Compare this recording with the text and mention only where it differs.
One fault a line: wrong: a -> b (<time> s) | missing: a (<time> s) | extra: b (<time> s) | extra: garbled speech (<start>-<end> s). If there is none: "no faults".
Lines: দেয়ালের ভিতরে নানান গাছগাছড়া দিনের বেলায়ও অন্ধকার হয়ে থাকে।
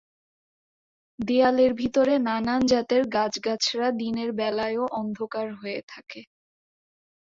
extra: জাতের (2.7 s)